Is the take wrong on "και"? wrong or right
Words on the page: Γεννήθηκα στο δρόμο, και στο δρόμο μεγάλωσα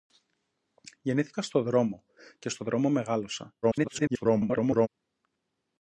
right